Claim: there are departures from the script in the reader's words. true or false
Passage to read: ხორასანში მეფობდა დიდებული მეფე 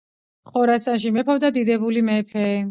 false